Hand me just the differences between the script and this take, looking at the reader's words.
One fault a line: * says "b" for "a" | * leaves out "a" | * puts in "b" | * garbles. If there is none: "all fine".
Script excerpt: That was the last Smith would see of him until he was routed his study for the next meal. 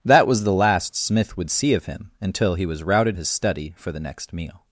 all fine